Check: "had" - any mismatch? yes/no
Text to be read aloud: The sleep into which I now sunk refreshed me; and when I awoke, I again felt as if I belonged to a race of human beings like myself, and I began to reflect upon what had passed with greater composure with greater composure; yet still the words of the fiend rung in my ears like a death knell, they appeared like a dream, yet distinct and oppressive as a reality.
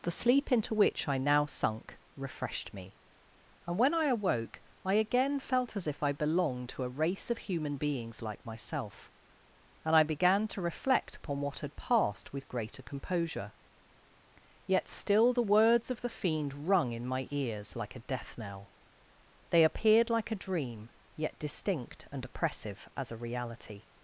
no